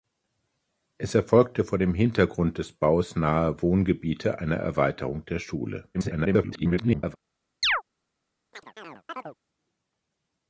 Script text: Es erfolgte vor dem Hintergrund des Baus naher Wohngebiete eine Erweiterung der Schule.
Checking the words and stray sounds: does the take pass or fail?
fail